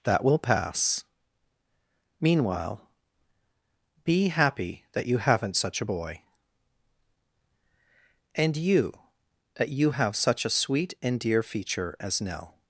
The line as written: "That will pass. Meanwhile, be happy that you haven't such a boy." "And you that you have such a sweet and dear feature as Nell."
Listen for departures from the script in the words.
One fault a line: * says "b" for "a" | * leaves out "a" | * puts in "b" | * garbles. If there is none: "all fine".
all fine